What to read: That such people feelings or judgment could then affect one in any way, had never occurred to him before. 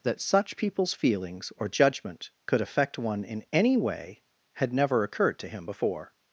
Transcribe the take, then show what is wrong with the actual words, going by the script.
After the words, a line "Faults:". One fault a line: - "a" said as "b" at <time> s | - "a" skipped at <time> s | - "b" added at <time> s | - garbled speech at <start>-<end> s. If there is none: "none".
That such peoples feelings or judgment could affect one in any way, had never occurred to him before.
Faults:
- "people" said as "peoples" at 0.6 s
- "then" skipped at 2.6 s